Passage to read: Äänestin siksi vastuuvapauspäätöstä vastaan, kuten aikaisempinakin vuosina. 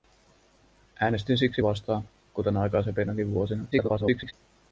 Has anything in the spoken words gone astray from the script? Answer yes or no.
yes